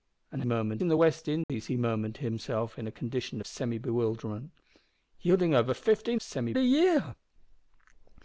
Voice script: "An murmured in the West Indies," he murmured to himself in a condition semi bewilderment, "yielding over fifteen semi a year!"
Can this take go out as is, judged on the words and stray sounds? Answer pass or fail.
fail